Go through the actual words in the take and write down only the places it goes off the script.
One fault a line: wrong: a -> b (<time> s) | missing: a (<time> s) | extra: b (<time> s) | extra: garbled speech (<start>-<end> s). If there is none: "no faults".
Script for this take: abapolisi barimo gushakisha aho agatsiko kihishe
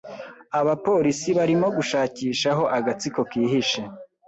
no faults